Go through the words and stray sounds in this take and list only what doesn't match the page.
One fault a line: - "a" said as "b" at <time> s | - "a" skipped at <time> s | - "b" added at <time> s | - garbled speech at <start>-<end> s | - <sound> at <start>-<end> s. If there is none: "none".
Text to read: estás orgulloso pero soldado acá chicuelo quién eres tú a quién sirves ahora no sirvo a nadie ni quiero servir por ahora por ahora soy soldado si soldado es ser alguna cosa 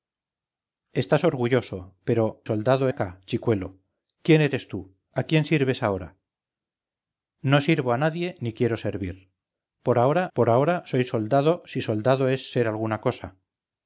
none